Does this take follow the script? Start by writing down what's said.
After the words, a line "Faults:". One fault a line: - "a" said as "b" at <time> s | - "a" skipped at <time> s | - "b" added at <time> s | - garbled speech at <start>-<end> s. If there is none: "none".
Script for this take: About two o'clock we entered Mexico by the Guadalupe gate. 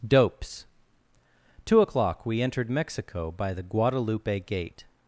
Dopes two o'clock we entered Mexico by the Guadalupe gate.
Faults:
- "About" said as "Dopes" at 0.1 s